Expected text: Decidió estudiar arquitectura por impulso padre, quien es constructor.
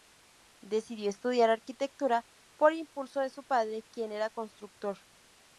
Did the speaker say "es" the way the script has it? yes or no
no